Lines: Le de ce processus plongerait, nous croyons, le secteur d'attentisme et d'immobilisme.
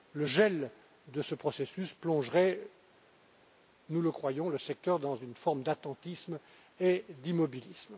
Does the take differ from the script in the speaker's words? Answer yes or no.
yes